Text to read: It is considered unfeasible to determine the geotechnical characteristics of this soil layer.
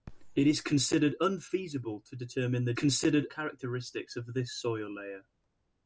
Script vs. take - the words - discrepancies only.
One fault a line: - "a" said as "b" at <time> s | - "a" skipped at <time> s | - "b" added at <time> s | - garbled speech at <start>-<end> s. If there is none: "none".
- "geotechnical" said as "considered" at 2.7 s